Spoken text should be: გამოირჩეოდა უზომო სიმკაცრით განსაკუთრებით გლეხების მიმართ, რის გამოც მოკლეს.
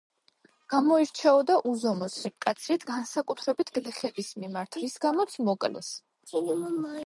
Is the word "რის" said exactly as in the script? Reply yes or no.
yes